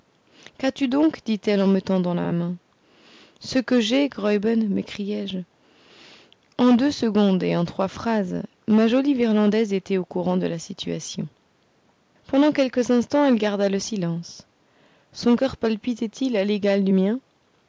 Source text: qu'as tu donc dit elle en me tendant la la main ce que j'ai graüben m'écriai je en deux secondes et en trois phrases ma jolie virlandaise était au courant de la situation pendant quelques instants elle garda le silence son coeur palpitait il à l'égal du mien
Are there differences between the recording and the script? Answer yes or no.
no